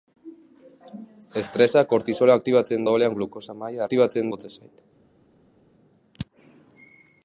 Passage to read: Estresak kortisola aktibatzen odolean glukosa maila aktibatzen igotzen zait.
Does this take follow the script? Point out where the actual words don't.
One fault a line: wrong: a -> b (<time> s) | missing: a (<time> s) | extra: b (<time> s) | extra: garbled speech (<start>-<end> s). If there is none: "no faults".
no faults